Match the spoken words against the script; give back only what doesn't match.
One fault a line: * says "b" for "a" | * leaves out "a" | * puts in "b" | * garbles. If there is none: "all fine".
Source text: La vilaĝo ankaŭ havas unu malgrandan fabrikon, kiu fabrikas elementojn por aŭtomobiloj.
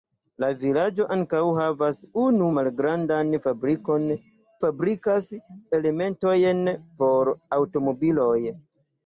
* leaves out "kiu"